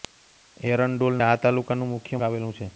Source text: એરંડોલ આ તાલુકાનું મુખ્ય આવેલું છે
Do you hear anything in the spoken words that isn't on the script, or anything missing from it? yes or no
no